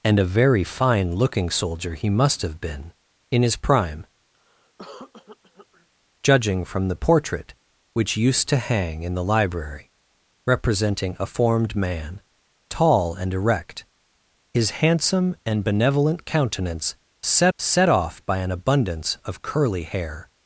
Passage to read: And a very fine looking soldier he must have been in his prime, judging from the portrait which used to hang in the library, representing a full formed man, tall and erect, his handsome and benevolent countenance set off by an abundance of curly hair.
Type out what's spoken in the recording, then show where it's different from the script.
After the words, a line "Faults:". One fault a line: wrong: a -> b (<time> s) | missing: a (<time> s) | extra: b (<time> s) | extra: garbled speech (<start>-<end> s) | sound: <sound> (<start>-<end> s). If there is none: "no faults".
And a very fine looking soldier he must have been in his prime, judging from the portrait which used to hang in the library, representing a formed man, tall and erect, his handsome and benevolent countenance set set off by an abundance of curly hair.
Faults:
sound: cough (4.3-5.9 s)
missing: full (11.3 s)
extra: set (17.6 s)